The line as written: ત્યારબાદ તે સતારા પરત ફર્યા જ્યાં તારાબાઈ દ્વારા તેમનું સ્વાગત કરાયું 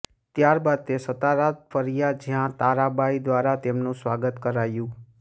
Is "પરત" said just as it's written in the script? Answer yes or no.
no